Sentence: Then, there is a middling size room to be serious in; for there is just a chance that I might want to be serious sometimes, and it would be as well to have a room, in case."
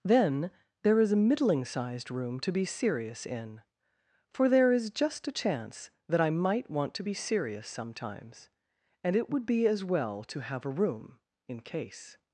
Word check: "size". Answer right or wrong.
wrong